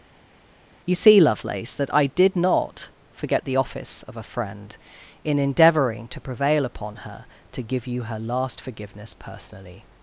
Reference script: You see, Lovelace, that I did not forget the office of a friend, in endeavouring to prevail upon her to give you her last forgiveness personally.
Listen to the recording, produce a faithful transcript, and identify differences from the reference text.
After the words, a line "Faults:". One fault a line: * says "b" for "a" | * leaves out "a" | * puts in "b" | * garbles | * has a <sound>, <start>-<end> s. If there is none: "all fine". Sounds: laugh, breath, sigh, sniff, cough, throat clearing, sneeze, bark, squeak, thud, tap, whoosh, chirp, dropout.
You see, Lovelace, that I did not forget the office of a friend, in endeavouring to prevail upon her to give you her last forgiveness personally.
Faults:
all fine